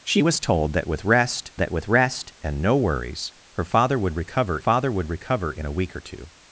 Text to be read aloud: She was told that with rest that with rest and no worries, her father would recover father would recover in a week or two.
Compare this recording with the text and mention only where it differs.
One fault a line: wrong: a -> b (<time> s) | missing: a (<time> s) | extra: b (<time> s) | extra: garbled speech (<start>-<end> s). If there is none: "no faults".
no faults